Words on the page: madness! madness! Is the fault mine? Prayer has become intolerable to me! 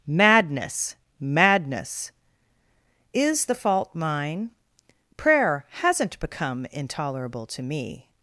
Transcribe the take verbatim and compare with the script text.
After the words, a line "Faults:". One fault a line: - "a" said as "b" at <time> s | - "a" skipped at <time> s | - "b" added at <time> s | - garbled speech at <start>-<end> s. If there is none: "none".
madness! madness! Is the fault mine? Prayer hasn't become intolerable to me!
Faults:
- "has" said as "hasn't" at 5.7 s